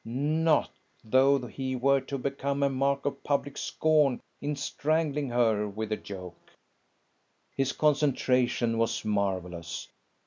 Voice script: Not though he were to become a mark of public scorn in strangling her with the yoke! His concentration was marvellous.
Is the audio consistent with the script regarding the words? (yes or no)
yes